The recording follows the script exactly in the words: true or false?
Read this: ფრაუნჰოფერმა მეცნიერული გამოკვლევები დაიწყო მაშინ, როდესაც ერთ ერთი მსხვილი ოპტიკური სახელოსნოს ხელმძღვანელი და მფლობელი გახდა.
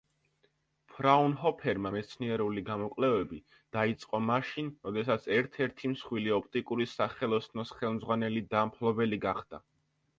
true